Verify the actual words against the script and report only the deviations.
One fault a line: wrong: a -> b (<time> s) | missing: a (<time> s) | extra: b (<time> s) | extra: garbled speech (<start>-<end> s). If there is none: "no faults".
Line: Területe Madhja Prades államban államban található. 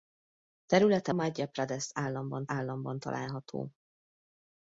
no faults